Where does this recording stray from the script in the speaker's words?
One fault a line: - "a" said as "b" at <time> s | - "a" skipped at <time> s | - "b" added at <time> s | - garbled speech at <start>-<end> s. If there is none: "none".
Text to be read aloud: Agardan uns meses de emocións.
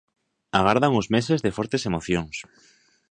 - "fortes" added at 1.6 s